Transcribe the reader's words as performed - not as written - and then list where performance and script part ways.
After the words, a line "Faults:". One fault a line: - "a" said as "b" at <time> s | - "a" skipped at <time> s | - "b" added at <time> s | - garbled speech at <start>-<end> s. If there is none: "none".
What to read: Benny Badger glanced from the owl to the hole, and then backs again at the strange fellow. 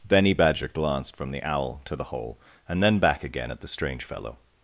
Benny Badger glanced from the owl to the hole, and then back again at the strange fellow.
Faults:
- "backs" said as "back" at 3.0 s